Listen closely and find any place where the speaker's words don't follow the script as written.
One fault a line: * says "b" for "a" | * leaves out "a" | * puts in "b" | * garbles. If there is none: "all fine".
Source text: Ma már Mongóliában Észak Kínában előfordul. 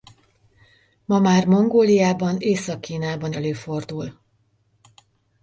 all fine